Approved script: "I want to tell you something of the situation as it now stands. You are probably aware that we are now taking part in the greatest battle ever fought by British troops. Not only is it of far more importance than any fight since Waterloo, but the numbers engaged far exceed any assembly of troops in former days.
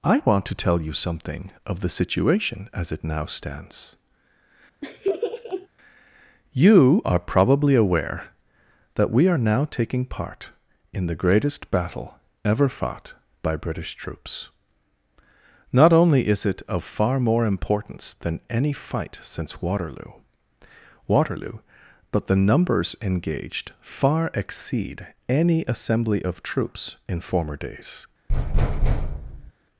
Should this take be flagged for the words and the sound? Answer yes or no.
yes